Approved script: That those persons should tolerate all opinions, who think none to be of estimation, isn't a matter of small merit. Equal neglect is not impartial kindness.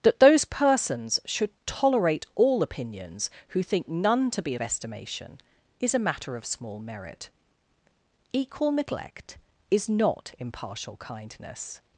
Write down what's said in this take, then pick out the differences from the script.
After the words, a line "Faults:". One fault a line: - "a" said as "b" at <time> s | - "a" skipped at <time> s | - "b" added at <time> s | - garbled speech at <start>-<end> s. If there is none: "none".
That those persons should tolerate all opinions, who think none to be of estimation, is a matter of small merit. Equal neglect is not impartial kindness.
Faults:
- "isn't" said as "is" at 5.8 s